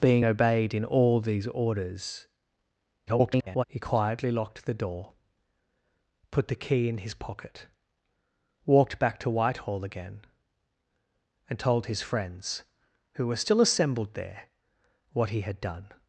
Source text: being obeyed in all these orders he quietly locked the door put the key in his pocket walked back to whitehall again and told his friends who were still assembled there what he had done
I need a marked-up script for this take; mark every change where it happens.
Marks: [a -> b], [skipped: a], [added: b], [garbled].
being obeyed in all these orders [garbled] he quietly locked the door put the key in his pocket walked back to whitehall again and told his friends who were still assembled there what he had done